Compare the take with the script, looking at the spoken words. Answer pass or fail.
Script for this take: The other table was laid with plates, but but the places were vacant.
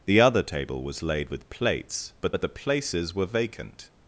pass